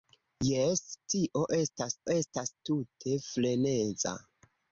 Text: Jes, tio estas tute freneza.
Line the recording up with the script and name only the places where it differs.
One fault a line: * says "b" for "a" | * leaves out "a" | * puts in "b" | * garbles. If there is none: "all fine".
* puts in "estas"